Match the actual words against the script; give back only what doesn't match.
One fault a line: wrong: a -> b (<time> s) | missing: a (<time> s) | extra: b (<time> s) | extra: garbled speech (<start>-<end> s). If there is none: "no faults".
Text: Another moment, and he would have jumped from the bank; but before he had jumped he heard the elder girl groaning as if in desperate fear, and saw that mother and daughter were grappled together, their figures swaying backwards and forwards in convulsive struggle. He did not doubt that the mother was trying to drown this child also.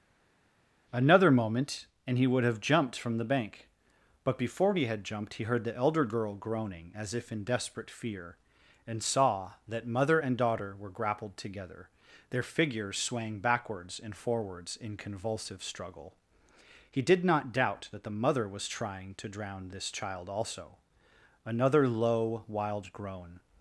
extra: Another low wild groan (21.4 s)